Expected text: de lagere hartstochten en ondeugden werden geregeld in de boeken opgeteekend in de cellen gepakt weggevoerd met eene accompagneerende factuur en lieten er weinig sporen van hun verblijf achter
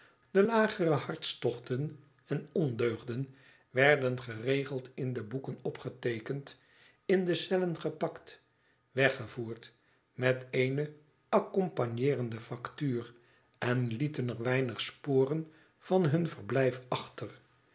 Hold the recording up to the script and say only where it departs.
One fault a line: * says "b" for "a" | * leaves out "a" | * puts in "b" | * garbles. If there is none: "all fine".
all fine